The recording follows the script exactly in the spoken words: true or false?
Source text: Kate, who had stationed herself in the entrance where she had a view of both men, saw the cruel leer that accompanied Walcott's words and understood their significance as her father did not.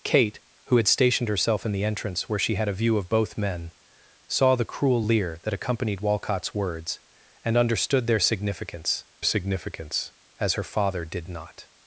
false